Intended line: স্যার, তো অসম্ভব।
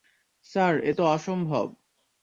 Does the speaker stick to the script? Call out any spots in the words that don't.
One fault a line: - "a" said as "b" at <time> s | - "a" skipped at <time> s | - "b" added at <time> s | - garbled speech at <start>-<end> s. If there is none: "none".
- "এ" added at 0.8 s